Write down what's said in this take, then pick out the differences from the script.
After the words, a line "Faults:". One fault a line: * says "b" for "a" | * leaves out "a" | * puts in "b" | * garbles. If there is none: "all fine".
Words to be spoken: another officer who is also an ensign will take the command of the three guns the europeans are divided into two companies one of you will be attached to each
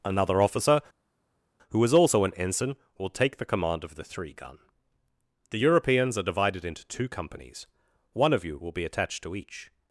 another officer who is also an ensign will take the command of the three gun the europeans are divided into two companies one of you will be attached to each
Faults:
* says "gun" for "guns"